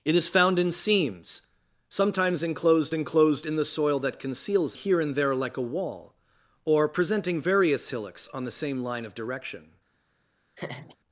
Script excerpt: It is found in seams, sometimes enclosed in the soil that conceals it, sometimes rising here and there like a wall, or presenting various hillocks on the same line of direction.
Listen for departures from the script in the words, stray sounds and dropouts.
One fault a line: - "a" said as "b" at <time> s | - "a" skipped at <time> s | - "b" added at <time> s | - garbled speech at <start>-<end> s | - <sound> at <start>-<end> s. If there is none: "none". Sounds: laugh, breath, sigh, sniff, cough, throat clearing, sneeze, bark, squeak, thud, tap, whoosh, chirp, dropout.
- "enclosed" added at 2.9 s
- "it sometimes rising" skipped at 4.8 s
- laugh at 10.6-11.0 s